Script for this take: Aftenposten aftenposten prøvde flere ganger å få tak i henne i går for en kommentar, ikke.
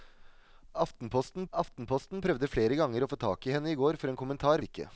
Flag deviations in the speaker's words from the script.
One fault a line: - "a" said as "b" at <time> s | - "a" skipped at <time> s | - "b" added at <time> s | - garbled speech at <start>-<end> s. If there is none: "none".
none